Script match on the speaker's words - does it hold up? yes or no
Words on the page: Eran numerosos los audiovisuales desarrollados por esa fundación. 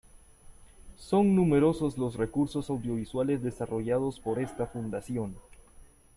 no